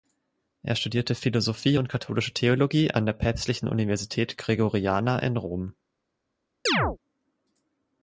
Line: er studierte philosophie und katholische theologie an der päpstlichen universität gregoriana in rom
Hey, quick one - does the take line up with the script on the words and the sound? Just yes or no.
no